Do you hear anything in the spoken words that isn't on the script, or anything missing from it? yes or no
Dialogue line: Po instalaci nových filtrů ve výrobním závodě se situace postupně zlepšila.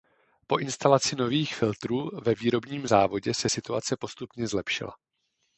no